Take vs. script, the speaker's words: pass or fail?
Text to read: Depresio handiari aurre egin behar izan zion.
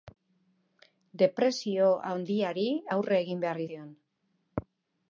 fail